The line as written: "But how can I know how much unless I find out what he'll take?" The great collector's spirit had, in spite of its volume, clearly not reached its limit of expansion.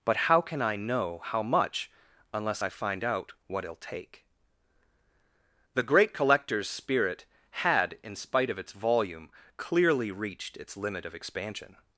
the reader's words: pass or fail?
fail